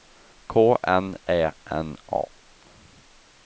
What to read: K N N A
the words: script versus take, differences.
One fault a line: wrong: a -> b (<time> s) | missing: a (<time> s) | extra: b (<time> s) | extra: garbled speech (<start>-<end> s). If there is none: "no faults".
extra: Ä (1.3 s)